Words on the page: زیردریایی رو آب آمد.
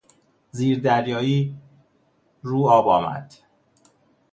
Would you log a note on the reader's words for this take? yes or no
no